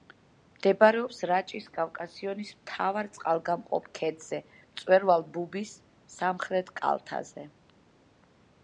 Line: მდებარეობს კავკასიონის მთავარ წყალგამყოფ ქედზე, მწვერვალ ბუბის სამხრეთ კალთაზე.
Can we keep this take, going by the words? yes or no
no